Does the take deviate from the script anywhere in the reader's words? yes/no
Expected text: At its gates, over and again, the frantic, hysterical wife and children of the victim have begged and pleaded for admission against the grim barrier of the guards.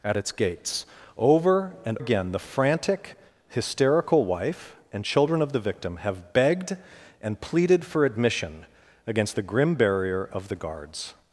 no